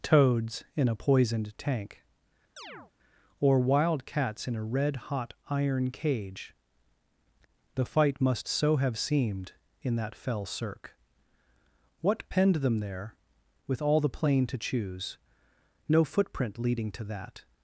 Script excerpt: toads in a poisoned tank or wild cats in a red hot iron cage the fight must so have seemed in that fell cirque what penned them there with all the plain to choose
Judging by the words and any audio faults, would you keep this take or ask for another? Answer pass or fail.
fail